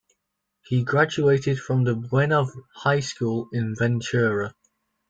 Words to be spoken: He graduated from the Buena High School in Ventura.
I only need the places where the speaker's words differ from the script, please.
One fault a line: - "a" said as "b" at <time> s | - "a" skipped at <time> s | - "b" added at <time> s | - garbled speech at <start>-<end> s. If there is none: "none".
none